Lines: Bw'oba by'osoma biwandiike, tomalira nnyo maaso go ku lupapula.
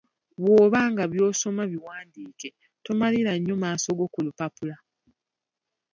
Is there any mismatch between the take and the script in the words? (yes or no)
yes